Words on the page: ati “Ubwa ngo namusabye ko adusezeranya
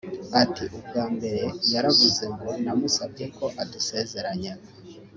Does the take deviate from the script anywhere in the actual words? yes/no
yes